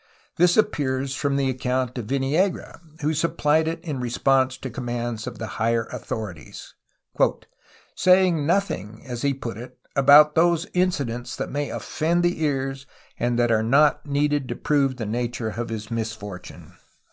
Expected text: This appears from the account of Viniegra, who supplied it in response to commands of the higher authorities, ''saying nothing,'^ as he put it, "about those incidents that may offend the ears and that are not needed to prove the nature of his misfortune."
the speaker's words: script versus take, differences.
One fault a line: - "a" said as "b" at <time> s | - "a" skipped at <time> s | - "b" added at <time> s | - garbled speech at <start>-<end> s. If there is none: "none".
none